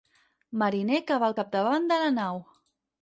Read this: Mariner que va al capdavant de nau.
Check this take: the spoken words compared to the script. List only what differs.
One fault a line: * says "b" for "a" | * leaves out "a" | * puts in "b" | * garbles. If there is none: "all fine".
* puts in "la"